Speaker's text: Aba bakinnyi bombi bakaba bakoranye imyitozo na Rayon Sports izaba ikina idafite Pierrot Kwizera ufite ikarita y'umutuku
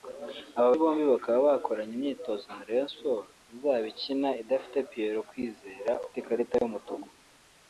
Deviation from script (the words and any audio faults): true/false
true